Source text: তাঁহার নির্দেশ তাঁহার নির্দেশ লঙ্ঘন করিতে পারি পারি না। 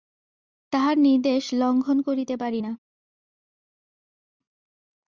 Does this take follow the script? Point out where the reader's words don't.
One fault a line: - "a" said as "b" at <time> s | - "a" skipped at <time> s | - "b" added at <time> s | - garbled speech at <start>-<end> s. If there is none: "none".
- "তাঁহার নির্দেশ" skipped at 1.4 s
- "পারি" skipped at 2.6 s